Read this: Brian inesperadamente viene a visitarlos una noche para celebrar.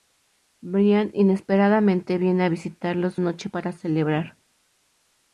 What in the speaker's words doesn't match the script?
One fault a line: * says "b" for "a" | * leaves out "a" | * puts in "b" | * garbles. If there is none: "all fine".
* leaves out "una"